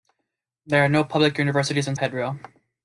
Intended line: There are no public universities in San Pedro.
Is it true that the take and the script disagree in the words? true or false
true